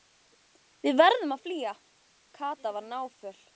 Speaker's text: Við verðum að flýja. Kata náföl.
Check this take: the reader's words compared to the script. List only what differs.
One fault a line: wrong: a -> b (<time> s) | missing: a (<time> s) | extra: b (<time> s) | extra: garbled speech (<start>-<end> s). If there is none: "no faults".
extra: var (2.8 s)